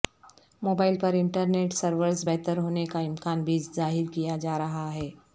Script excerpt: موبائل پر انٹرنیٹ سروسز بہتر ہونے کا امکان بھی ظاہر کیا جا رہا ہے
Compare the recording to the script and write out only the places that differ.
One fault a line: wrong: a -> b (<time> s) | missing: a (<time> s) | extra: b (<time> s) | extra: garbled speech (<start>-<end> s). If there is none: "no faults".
no faults